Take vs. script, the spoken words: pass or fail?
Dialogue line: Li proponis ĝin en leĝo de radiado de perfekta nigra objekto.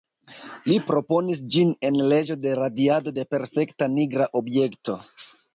pass